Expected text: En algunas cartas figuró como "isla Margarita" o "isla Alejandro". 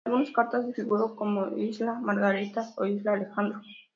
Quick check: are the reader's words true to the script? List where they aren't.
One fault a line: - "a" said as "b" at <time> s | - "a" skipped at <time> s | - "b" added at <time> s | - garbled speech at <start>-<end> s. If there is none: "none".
none